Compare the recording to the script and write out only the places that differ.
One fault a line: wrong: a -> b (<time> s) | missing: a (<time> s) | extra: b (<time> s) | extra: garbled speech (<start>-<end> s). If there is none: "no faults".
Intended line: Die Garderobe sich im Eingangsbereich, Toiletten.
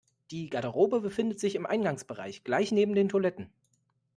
extra: befindet (1.0 s)
extra: gleich neben den (2.4 s)